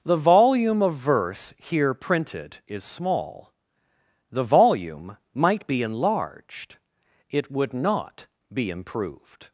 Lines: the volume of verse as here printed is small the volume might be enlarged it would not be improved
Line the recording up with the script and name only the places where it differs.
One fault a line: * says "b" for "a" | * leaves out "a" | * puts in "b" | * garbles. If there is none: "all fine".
* leaves out "as"